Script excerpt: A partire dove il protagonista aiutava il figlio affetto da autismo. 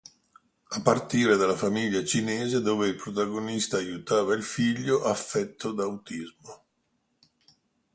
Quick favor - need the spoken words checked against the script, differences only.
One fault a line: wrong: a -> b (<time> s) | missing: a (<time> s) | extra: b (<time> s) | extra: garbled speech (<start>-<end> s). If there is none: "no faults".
extra: dalla famiglia cinese (1.4 s)